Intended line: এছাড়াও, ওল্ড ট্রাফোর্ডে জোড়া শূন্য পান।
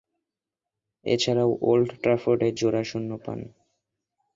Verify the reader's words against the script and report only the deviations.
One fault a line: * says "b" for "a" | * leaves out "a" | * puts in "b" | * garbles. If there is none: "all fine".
all fine